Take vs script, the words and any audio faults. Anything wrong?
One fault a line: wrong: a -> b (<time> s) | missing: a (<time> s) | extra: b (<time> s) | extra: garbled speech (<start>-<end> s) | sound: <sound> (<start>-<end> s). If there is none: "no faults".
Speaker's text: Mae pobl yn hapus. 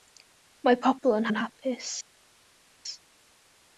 extra: yn (1.3 s)